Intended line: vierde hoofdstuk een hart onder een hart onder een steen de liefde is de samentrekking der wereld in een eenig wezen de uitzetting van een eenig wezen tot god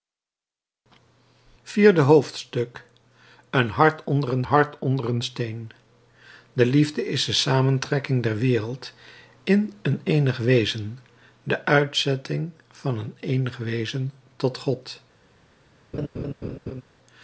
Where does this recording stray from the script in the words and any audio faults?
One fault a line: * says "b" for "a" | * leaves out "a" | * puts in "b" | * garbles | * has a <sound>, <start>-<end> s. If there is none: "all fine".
* has a laugh, 15.9-16.8 s